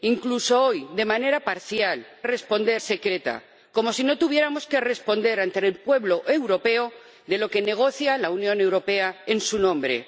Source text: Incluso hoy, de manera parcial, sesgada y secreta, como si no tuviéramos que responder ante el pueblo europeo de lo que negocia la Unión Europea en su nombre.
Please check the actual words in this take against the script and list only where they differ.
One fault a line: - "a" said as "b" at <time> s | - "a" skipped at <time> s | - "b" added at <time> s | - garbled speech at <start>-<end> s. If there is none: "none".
- "sesgada" said as "responder" at 2.2 s